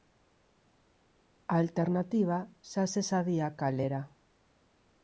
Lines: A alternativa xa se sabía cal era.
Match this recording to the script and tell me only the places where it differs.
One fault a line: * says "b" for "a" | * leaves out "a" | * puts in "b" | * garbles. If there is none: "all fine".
all fine